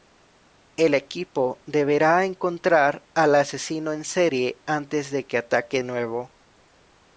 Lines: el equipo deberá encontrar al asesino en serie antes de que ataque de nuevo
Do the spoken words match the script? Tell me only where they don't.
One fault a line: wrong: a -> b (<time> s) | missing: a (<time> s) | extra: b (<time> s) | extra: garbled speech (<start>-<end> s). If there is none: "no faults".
missing: de (5.8 s)